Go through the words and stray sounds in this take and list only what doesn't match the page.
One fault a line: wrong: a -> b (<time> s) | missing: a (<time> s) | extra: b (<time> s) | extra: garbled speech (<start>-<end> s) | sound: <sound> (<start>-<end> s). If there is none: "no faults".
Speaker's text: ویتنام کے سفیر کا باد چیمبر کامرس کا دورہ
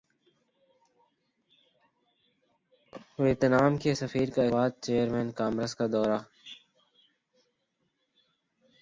no faults